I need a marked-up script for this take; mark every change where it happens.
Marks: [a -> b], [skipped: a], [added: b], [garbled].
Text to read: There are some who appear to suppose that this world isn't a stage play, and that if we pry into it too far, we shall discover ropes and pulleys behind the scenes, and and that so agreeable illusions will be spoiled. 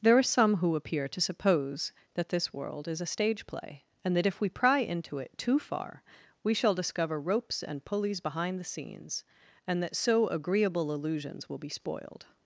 There are some who appear to suppose that this world [isn't -> is] a stage play, and that if we pry into it too far, we shall discover ropes and pulleys behind the scenes, and [skipped: and] that so agreeable illusions will be spoiled.